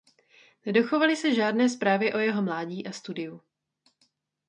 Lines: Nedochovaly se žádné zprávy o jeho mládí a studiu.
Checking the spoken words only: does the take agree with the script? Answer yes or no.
yes